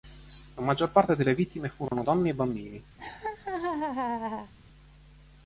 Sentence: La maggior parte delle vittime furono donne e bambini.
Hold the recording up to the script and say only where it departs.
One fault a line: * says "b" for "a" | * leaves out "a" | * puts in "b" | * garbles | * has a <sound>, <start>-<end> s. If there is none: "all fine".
* has a dropout, 1.9-1.9 s
* has a laugh, 3.0-4.5 s